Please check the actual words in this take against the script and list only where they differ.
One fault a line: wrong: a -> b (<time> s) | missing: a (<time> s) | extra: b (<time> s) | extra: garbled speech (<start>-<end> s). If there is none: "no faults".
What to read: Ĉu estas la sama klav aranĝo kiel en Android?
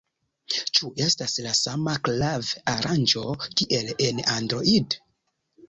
no faults